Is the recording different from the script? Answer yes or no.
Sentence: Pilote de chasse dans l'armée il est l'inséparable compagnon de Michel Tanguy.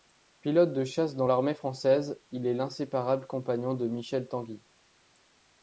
yes